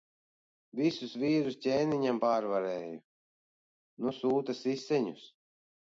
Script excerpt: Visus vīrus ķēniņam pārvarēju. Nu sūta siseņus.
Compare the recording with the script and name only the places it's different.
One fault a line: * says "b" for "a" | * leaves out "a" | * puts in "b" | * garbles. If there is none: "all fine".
all fine